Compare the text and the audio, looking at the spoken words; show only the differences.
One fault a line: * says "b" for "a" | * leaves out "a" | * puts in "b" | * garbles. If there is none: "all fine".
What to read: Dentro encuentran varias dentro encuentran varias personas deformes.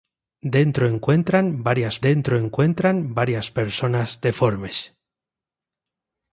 all fine